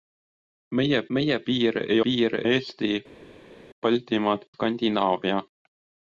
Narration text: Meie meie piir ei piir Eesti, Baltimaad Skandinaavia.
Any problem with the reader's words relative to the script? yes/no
no